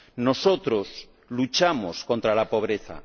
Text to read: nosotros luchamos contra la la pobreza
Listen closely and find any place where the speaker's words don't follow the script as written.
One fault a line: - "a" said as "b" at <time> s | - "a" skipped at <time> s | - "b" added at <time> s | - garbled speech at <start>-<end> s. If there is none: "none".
- "la" skipped at 2.5 s